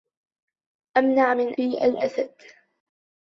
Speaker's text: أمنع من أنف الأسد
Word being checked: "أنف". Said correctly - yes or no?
no